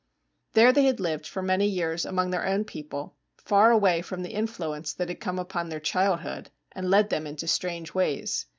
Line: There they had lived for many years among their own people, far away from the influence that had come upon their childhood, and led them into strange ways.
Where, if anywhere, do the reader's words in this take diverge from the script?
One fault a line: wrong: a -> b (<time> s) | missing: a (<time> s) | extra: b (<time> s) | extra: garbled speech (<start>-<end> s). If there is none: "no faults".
no faults